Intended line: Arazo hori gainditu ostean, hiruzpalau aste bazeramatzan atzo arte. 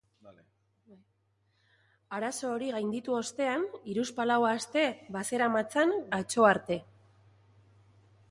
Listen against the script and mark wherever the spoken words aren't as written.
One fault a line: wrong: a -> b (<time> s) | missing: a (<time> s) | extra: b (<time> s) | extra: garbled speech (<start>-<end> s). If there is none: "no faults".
no faults